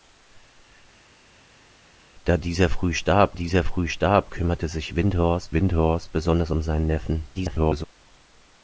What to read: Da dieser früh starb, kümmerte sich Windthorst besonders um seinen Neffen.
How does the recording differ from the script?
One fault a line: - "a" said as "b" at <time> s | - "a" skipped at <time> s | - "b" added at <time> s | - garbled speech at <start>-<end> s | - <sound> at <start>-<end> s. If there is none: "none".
- "dieser früh starb" added at 3.3 s
- "Windthorst" added at 5.5 s
- garbled speech at 7.3-7.8 s